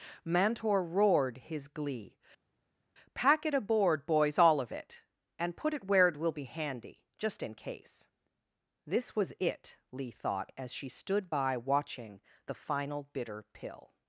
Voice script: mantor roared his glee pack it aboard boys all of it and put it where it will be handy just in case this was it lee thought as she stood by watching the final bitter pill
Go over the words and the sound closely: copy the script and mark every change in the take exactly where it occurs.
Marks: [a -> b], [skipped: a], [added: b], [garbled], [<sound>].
mantor roared his glee pack it aboard boys all of it and put it where it will be handy just in case this was it lee thought as she stood by watching the final bitter pill